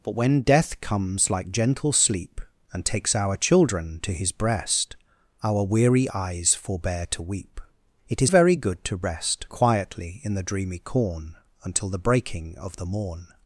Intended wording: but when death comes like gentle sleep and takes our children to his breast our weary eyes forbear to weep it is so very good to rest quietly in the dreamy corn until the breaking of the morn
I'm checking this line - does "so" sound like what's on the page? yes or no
no